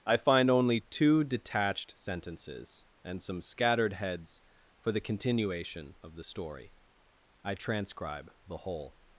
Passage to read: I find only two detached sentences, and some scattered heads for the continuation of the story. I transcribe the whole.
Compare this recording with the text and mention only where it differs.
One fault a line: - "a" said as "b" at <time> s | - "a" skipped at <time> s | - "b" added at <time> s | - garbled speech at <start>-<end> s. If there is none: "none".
none